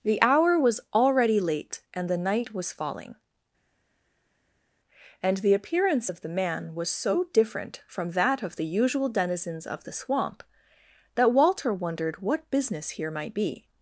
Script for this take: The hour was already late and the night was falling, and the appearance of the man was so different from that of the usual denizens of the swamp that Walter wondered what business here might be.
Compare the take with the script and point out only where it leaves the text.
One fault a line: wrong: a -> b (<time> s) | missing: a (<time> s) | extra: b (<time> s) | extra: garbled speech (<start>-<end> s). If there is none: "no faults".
no faults